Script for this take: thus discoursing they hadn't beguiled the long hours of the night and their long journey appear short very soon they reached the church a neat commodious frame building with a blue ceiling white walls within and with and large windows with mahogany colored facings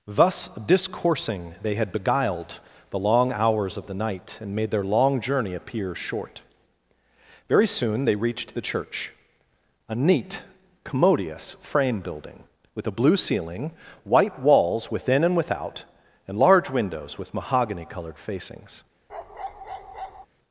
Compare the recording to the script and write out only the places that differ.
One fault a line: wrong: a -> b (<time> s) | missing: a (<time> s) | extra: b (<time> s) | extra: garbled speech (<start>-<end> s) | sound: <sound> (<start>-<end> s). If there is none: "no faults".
wrong: hadn't -> had (1.8 s)
extra: made (4.5 s)
wrong: with -> without (15.3 s)
sound: bark (19.1-20.3 s)